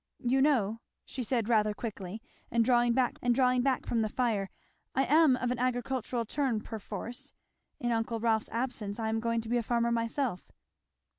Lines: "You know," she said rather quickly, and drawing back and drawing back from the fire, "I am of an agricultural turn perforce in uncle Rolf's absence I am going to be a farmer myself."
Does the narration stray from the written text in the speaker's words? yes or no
no